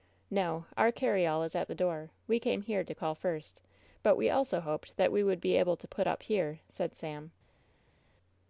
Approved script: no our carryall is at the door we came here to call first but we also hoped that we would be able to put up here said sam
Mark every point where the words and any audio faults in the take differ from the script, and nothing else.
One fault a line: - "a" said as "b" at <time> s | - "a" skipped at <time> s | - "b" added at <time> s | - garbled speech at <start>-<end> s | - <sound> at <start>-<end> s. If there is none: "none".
none